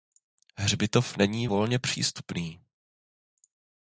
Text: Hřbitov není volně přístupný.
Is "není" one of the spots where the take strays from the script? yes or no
no